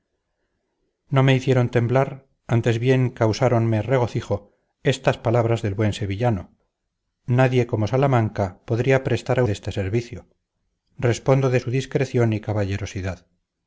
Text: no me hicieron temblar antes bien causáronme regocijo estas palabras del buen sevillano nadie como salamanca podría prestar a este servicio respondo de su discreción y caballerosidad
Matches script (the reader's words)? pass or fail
pass